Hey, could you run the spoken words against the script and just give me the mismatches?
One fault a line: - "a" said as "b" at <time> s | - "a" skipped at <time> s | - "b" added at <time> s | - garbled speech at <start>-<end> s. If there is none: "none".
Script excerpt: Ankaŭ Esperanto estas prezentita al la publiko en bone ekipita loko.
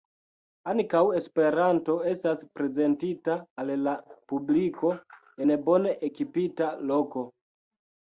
none